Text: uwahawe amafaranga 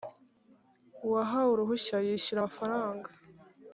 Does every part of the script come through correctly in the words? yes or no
no